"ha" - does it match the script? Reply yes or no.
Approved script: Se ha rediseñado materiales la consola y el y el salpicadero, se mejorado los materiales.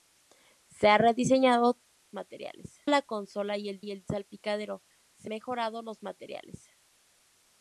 yes